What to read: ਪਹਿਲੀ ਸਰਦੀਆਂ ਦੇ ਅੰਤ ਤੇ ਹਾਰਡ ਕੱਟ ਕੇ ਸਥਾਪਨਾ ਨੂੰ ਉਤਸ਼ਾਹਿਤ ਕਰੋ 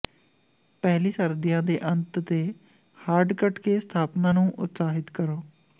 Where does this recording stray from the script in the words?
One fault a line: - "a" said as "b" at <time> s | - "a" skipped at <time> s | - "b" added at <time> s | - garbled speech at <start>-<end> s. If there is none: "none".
none